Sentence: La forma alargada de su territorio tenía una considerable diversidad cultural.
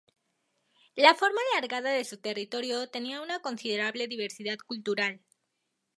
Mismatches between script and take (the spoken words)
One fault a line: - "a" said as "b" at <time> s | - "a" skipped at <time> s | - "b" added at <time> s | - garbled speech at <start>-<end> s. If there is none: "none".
none